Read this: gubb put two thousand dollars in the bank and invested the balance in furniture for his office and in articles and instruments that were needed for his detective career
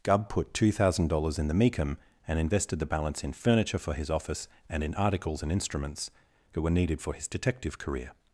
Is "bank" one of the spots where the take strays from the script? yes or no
yes